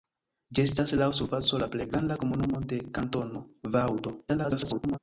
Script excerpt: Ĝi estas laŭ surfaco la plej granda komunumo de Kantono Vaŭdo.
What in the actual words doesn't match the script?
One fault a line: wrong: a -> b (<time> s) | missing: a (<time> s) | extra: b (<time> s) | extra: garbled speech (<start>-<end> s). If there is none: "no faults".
extra: garbled speech (4.3-5.0 s)